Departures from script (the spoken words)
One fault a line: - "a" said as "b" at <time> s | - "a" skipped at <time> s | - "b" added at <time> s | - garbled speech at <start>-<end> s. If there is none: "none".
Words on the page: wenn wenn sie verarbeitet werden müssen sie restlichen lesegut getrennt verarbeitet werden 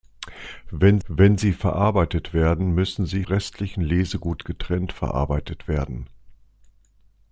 none